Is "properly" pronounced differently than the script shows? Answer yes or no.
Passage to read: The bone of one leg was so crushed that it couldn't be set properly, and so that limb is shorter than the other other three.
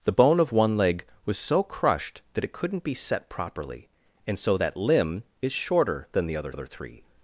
no